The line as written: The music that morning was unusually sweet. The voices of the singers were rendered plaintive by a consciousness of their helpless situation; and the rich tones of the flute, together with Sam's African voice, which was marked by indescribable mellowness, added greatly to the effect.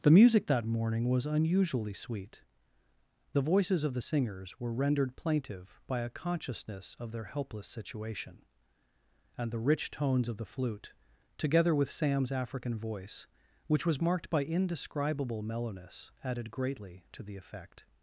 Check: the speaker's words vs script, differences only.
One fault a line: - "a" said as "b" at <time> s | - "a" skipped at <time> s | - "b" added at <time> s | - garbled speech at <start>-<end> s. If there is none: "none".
none